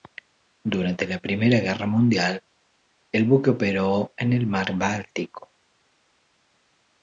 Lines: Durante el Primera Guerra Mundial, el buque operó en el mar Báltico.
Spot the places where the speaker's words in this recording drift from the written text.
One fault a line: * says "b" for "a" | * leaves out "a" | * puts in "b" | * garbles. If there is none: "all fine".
* says "la" for "el"